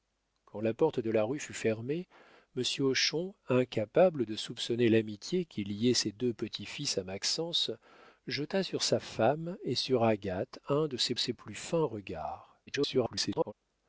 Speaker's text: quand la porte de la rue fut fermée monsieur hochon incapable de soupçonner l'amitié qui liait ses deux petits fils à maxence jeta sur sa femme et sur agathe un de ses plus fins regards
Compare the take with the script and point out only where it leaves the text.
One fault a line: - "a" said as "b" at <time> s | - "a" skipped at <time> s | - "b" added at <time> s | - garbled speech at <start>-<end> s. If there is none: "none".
- "ses" added at 11.2 s
- garbled speech at 12.7-13.5 s